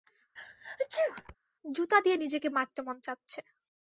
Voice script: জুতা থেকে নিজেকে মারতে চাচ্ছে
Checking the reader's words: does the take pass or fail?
fail